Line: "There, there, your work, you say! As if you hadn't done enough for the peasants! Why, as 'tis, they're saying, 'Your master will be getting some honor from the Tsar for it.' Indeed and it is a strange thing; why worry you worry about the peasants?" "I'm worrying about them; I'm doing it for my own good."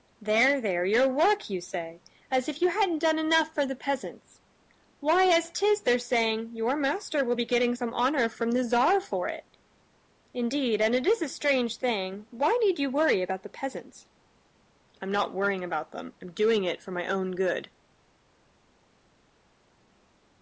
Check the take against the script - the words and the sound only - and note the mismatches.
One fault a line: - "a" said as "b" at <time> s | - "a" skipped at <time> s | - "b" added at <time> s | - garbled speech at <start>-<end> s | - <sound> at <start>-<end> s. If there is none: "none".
- "worry" said as "need" at 12.6 s
- "not" added at 15.1 s